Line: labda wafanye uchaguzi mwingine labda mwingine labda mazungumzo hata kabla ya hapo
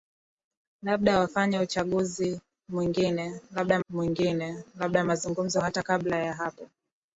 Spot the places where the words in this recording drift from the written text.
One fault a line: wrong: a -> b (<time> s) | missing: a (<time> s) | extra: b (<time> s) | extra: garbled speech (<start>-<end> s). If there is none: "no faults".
no faults